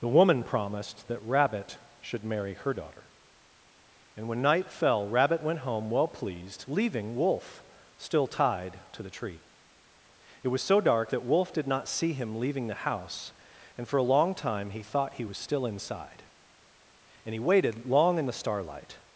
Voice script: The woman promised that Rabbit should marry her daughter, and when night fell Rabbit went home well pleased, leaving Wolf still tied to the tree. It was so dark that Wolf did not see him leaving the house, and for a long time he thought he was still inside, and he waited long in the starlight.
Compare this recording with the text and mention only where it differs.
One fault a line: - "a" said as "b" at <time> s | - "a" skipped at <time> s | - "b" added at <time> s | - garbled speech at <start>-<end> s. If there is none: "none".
none